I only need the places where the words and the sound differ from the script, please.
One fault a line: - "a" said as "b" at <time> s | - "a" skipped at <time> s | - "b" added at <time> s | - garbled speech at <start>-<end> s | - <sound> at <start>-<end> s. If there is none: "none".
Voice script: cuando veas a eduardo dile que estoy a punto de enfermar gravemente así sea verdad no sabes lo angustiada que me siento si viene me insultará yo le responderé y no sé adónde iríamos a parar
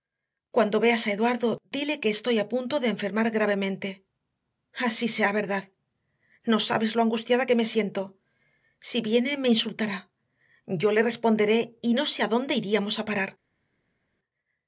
none